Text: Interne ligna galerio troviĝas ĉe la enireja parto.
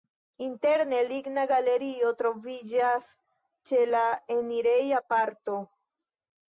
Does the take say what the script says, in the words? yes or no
yes